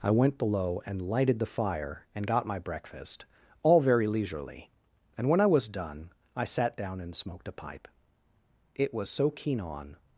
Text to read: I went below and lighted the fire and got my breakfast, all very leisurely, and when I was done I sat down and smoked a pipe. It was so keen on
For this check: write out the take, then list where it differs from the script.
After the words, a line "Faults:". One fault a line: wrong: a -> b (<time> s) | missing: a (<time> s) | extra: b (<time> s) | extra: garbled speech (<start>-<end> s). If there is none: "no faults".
I went below and lighted the fire and got my breakfast, all very leisurely, and when I was done I sat down and smoked a pipe. It was so keen on
Faults:
no faults